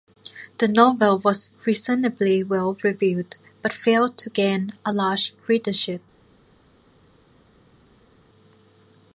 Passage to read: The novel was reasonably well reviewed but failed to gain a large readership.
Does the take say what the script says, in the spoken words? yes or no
yes